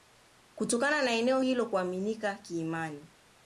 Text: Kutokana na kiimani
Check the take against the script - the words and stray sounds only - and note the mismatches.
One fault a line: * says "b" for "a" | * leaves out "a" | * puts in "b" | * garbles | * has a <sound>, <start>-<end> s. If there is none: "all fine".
* puts in "eneo hilo kuaminika"